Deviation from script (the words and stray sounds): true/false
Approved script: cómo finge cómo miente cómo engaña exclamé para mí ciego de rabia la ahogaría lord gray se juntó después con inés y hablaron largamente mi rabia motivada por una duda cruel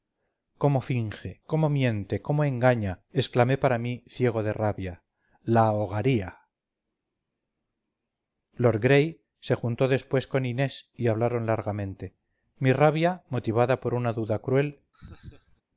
true